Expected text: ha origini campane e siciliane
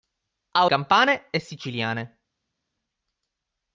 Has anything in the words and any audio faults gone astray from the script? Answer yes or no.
yes